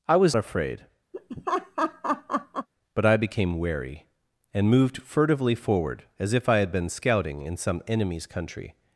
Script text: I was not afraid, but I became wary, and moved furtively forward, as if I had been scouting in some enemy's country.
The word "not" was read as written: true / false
false